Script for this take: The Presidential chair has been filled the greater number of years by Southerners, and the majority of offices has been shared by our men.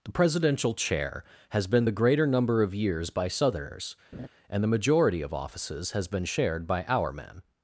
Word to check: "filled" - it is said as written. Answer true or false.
false